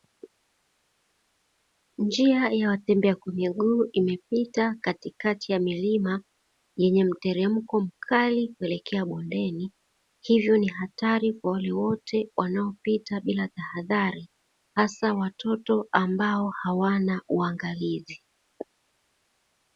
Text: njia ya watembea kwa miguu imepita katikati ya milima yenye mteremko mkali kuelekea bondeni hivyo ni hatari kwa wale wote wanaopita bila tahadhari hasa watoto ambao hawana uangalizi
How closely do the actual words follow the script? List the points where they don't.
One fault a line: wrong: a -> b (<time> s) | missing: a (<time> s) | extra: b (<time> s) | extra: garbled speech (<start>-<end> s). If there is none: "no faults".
no faults